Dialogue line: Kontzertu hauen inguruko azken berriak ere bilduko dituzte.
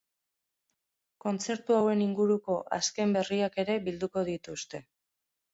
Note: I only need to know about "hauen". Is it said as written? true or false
true